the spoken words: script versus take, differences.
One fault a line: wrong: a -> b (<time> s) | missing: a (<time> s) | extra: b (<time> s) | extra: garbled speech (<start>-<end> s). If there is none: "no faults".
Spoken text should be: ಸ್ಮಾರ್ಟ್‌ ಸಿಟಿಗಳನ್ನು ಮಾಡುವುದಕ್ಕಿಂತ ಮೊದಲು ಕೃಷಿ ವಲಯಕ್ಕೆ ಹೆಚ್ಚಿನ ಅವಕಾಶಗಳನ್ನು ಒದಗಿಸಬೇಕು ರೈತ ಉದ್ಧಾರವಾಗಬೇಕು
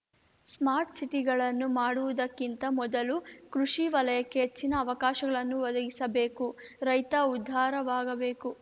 no faults